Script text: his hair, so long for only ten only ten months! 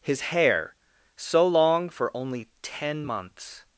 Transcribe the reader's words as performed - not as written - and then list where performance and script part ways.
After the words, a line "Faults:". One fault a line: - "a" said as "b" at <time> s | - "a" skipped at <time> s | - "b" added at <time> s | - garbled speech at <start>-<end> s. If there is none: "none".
his hair, so long for only ten months!
Faults:
- "only ten" skipped at 3.1 s